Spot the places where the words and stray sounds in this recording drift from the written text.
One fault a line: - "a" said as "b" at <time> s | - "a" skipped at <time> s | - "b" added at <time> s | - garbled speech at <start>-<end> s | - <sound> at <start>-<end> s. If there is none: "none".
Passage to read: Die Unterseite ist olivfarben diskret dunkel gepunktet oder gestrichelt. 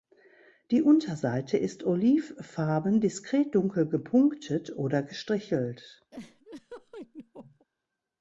- laugh at 6.1-7.7 s